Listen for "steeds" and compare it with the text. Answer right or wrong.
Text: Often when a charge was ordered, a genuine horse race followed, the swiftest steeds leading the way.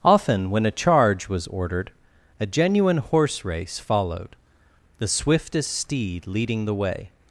wrong